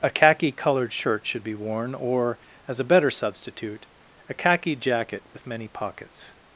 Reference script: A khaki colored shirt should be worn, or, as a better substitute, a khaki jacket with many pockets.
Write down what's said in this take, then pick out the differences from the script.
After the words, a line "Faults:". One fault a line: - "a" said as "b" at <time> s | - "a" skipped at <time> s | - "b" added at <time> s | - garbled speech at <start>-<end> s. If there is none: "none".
A khaki colored shirt should be worn, or, as a better substitute, a khaki jacket with many pockets.
Faults:
none